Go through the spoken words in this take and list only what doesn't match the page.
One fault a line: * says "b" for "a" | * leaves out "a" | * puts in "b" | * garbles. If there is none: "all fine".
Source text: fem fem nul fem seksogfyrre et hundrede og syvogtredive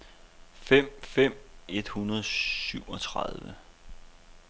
* leaves out "nul fem seksogfyrre"